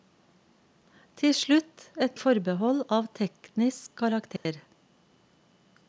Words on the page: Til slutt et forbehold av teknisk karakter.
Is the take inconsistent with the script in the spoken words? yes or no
no